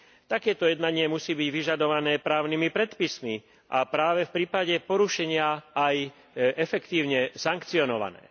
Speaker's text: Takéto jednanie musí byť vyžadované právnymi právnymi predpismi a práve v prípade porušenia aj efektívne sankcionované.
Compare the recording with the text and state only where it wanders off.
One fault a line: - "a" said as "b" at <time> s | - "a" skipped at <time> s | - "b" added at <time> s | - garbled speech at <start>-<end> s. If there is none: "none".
- "právnymi" skipped at 2.7 s